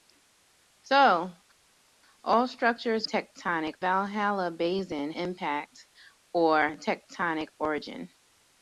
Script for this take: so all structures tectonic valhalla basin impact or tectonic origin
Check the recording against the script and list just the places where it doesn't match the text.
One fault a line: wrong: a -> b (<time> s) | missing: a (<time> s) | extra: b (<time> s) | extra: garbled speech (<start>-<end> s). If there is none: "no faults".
no faults